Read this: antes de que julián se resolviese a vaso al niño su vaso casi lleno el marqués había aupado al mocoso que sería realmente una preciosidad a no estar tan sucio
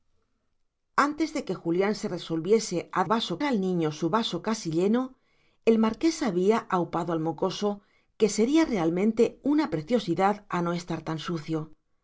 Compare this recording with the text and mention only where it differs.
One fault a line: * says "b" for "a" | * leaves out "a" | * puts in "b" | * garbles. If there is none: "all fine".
all fine